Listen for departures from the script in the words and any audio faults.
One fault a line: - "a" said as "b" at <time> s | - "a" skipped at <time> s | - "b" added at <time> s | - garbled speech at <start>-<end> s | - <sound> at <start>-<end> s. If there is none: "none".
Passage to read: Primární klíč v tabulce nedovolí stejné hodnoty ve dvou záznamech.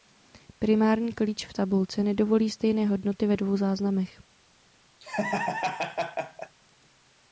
- laugh at 5.0-6.6 s